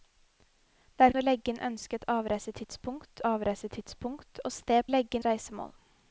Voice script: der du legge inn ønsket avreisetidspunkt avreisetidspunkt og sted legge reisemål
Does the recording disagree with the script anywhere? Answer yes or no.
no